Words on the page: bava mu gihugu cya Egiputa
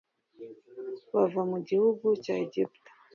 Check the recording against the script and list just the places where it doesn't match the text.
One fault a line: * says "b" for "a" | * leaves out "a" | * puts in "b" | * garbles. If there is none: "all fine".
all fine